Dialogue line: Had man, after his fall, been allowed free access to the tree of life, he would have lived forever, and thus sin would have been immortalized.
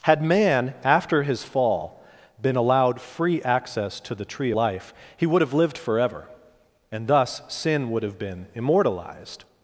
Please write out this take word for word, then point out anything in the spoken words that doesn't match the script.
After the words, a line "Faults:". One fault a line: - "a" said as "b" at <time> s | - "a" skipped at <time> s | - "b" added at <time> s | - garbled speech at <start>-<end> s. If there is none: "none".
Had man, after his fall, been allowed free access to the tree life, he would have lived forever, and thus sin would have been immortalized.
Faults:
- "of" skipped at 4.5 s